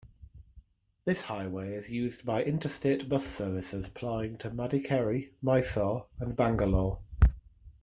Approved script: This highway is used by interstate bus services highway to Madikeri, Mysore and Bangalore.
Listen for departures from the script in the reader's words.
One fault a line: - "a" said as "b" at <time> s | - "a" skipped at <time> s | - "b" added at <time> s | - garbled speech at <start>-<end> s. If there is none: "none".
- "highway" said as "plying" at 3.9 s